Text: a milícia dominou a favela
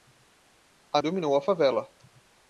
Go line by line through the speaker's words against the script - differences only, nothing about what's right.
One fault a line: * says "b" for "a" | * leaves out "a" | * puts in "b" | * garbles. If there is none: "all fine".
* leaves out "milícia"